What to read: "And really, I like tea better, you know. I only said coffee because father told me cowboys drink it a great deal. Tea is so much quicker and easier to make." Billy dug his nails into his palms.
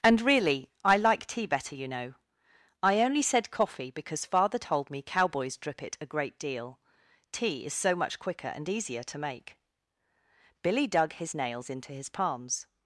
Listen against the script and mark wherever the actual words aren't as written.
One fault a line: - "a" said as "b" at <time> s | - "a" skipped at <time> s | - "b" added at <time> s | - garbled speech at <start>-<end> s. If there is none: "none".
- "drink" said as "drip" at 5.6 s